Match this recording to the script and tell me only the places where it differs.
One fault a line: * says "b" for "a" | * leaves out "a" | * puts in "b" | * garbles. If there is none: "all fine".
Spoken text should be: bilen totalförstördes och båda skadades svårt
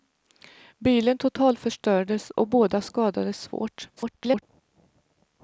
* garbles